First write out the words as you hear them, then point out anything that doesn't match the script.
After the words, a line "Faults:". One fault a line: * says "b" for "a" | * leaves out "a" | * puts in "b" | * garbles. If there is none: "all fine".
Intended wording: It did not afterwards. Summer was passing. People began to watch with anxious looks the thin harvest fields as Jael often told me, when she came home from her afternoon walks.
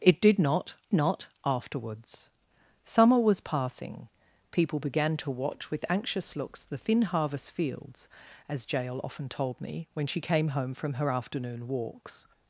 It did not not afterwards. Summer was passing. People began to watch with anxious looks the thin harvest fields as Jael often told me, when she came home from her afternoon walks.
Faults:
* puts in "not"